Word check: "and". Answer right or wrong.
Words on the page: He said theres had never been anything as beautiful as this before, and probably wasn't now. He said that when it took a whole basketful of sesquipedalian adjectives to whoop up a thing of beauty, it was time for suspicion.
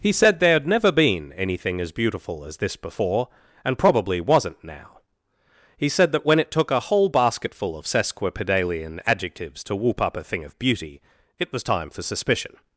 right